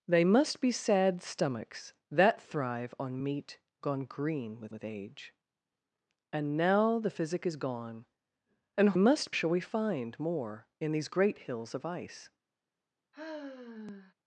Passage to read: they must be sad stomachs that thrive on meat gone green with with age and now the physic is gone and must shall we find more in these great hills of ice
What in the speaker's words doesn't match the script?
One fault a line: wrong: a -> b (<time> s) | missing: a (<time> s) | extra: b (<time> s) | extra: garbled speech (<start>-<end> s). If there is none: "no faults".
no faults